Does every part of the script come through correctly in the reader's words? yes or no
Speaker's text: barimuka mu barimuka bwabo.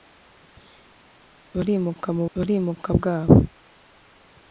yes